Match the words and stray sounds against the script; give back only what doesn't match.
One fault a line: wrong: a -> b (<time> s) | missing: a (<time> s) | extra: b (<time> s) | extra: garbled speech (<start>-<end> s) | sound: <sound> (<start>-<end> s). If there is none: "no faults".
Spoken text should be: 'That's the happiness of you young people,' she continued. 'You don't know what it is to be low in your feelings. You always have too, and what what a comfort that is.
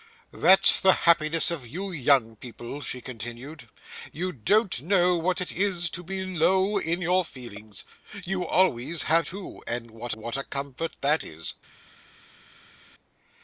no faults